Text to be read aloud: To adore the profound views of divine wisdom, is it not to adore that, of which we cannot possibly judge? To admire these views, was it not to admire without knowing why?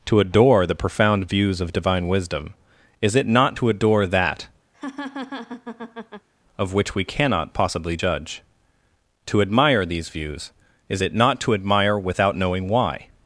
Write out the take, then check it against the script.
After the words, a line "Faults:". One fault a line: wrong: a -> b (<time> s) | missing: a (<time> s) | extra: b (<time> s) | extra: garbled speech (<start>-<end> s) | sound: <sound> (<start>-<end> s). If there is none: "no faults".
To adore the profound views of divine wisdom, is it not to adore that, of which we cannot possibly judge? To admire these views, is it not to admire without knowing why?
Faults:
sound: laugh (4.7-6.3 s)
wrong: was -> is (10.9 s)